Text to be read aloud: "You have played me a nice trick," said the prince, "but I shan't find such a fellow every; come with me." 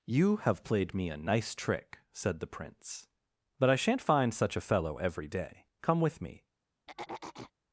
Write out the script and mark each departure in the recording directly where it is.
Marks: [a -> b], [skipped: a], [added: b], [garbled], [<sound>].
"You have played me a nice trick," said the prince, "but I shan't find such a fellow every; [added: day] come with me." [throat clearing]